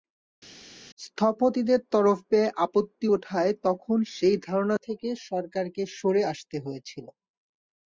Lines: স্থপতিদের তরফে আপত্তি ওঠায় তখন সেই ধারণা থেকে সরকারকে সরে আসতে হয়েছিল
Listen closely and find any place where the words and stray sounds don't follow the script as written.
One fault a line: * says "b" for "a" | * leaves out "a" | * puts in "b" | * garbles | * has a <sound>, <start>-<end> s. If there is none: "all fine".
all fine